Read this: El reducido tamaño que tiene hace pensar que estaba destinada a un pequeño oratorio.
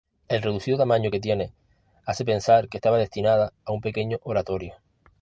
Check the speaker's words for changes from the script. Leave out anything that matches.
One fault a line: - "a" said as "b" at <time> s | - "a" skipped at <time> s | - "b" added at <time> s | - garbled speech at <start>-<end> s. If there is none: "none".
none